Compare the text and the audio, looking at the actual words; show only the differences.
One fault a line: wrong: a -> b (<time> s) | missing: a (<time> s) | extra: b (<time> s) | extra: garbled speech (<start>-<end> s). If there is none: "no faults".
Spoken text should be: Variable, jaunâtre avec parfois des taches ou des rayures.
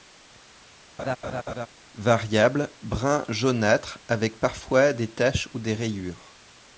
extra: brun (2.8 s)